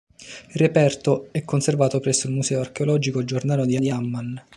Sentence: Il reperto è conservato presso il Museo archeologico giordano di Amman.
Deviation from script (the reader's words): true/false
true